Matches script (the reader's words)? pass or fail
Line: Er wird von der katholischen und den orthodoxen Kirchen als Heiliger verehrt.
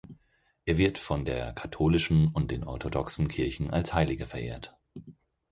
pass